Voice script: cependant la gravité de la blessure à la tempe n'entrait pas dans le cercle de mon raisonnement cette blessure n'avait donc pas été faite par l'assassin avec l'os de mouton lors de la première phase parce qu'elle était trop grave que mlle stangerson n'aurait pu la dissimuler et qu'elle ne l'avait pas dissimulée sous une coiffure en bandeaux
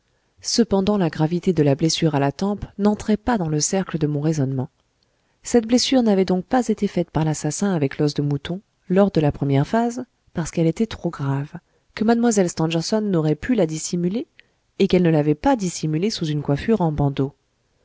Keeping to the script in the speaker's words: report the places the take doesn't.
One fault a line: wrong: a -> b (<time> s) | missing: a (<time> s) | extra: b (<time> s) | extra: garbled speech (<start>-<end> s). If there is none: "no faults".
no faults